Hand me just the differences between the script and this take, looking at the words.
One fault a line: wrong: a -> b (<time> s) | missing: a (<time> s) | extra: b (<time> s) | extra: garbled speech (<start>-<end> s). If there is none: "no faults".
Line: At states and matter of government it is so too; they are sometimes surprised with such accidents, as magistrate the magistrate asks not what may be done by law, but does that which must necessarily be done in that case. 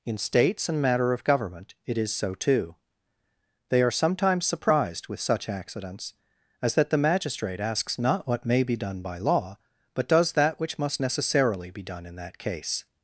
wrong: At -> In (0.1 s)
wrong: magistrate -> that (6.8 s)